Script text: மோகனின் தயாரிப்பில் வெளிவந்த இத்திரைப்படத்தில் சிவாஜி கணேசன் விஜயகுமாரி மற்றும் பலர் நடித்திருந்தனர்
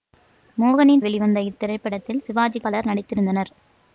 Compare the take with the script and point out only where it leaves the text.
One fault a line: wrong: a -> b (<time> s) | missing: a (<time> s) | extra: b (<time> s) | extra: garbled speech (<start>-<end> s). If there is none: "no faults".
missing: தயாரிப்பில் (1.0 s)
missing: கணேசன் விஜயகுமாரி மற்றும் (2.6 s)